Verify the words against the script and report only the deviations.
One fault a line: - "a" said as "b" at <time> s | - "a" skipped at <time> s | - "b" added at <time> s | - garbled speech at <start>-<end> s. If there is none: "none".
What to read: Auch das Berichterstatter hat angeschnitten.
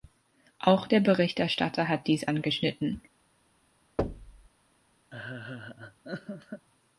- "das" said as "der" at 0.8 s
- "dies" added at 2.1 s